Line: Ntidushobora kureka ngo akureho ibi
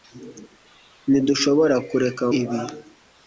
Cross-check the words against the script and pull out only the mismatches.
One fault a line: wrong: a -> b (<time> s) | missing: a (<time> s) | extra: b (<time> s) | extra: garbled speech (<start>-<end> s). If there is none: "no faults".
missing: ngo akureho (2.2 s)